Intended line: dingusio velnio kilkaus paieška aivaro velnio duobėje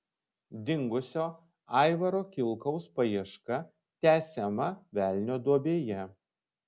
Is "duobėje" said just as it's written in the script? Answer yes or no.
yes